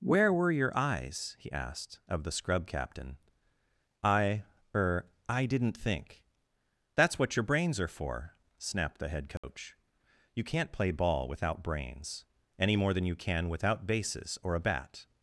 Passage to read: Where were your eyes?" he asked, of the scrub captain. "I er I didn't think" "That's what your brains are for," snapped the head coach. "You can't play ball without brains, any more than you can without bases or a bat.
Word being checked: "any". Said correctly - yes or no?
yes